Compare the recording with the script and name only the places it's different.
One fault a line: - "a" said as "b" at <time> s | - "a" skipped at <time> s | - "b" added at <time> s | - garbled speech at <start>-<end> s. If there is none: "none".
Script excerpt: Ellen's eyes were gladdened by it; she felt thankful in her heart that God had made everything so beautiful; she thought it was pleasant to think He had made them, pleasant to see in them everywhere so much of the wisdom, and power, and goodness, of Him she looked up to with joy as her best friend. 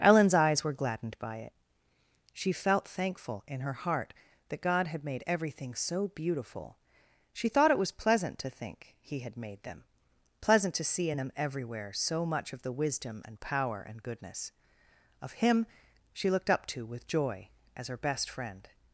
none